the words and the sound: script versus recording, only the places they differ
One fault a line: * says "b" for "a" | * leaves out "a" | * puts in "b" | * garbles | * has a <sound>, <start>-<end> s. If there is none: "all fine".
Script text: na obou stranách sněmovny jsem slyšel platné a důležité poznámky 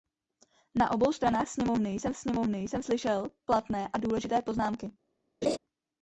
* puts in "sněmovny jsem"
* has a laugh, 5.4-5.6 s